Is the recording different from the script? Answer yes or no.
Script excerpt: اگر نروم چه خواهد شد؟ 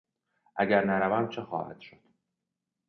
no